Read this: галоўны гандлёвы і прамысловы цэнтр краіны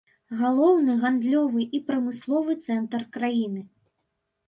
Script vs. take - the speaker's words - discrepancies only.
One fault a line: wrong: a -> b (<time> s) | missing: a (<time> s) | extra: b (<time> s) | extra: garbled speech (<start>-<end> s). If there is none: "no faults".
no faults